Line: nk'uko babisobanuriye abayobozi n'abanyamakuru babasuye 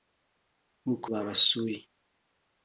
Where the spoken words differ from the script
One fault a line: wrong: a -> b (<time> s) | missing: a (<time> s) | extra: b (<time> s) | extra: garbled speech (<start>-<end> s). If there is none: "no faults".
missing: babisobanuriye abayobozi n'abanyamakuru (1.1 s)